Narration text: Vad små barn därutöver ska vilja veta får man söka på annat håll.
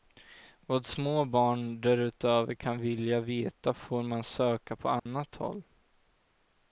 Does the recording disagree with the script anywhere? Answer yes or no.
yes